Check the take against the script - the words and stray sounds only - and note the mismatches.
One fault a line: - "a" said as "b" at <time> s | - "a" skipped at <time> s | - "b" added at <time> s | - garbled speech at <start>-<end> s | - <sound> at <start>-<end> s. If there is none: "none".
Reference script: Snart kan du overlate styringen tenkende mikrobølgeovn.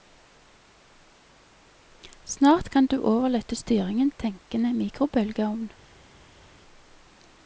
none